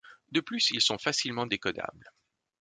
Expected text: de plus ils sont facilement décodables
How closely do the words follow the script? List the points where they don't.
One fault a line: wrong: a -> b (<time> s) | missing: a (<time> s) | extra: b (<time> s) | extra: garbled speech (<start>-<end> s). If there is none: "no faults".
no faults